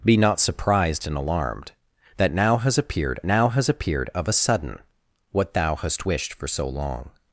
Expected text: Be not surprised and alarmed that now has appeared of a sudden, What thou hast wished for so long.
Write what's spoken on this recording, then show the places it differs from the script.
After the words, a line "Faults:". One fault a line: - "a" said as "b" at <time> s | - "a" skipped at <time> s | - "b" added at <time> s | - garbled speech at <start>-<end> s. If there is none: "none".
Be not surprised and alarmed that now has appeared now has appeared of a sudden, What thou hast wished for so long.
Faults:
- "now has appeared" added at 3.2 s